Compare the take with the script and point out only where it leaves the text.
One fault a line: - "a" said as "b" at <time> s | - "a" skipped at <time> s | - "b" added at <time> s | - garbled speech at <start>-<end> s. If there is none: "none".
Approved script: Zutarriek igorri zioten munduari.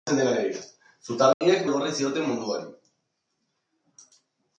none